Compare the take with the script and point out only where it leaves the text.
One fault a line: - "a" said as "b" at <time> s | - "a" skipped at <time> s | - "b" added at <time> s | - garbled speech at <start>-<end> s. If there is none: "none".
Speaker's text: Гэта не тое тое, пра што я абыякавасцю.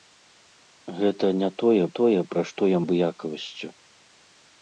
none